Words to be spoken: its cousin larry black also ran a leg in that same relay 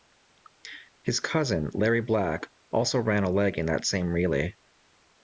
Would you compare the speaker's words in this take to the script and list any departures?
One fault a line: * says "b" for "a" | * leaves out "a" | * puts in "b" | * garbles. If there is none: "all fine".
* says "his" for "its"